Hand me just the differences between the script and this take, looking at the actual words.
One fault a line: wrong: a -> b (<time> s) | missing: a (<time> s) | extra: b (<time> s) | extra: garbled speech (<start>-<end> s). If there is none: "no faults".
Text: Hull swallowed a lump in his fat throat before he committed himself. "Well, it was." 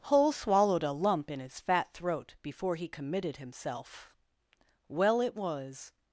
no faults